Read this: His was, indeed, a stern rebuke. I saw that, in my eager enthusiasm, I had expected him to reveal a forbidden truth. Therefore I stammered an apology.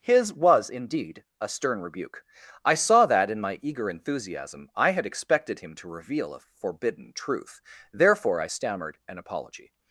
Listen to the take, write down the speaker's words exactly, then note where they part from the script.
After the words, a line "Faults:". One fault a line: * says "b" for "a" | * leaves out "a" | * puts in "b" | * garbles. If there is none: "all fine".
His was, indeed, a stern rebuke. I saw that, in my eager enthusiasm, I had expected him to reveal a forbidden truth. Therefore I stammered an apology.
Faults:
all fine